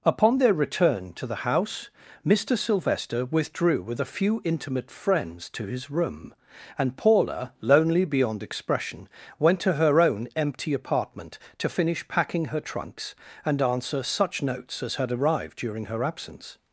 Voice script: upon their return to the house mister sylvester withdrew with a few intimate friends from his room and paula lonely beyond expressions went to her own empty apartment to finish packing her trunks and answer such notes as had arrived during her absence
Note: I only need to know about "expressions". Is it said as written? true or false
false